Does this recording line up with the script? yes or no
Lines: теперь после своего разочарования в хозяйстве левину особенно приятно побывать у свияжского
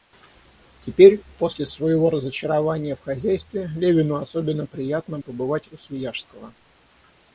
yes